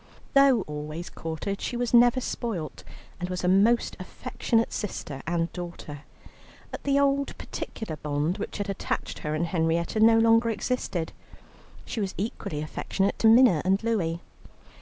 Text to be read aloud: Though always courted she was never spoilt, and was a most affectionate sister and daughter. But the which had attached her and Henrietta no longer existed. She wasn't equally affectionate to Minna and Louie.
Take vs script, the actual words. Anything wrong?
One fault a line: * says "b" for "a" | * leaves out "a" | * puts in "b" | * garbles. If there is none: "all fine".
* puts in "old particular bond"
* says "was" for "wasn't"